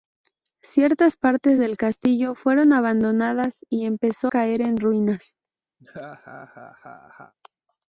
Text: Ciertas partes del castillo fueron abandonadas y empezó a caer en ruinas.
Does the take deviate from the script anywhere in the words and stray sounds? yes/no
yes